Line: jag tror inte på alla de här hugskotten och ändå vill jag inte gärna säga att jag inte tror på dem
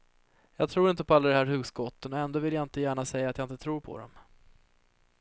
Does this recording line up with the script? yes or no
yes